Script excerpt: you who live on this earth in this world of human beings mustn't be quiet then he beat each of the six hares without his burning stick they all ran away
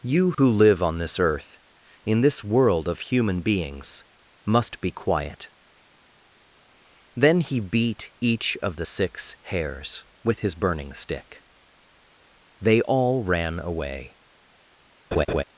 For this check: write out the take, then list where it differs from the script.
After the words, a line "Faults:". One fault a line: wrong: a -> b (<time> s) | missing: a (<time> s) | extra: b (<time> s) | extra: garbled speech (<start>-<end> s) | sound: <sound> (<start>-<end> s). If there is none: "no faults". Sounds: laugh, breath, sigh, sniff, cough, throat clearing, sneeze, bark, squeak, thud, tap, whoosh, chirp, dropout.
you who live on this earth in this world of human beings must be quiet then he beat each of the six hares with his burning stick they all ran away
Faults:
sound: dropout (0.3-0.4 s)
wrong: mustn't -> must (4.5 s)
wrong: without -> with (10.2 s)
sound: laugh (15.1-15.4 s)